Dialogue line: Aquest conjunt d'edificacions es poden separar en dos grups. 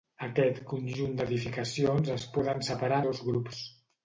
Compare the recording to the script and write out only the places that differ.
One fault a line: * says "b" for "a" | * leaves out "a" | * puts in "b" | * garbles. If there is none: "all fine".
* leaves out "en"